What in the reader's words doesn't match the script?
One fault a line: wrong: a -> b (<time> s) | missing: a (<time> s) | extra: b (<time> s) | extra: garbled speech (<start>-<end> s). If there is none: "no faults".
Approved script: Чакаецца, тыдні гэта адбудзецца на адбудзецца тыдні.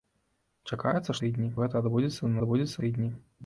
no faults